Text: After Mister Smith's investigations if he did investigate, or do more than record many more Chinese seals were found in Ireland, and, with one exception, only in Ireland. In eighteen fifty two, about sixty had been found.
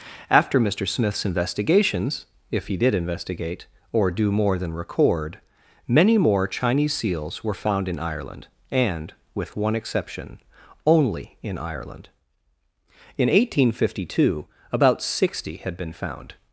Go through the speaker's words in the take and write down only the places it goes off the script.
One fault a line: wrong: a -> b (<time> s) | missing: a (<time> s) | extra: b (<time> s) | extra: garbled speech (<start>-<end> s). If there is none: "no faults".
no faults